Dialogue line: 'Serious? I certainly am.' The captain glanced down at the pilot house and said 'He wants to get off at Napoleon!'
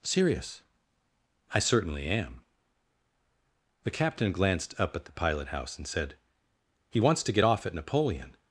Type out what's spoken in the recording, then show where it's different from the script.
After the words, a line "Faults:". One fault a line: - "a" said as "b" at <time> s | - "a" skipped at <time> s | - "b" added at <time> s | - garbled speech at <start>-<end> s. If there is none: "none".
'Serious? I certainly am.' The captain glanced up at the pilot house and said 'He wants to get off at Napoleon!'
Faults:
- "down" said as "up" at 4.8 s